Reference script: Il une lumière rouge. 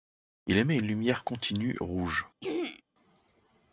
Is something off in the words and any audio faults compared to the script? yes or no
yes